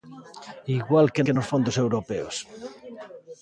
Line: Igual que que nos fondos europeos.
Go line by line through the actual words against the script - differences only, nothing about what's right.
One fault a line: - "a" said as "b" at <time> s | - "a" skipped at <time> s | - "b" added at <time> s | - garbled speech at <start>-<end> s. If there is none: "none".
none